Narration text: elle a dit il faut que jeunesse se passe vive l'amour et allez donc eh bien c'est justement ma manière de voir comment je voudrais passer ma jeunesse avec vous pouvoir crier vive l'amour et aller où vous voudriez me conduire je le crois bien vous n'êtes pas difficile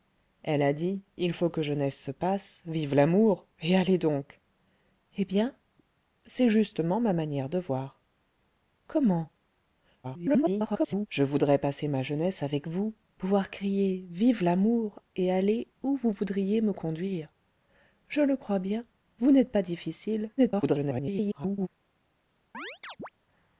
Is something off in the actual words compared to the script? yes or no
yes